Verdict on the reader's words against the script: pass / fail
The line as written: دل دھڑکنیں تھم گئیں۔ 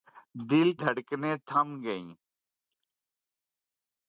pass